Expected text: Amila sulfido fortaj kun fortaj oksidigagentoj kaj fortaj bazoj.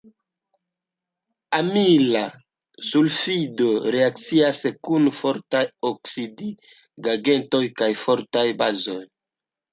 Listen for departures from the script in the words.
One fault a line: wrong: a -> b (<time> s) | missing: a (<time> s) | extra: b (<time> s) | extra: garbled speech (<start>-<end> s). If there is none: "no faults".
wrong: fortaj -> reakcias (4.0 s)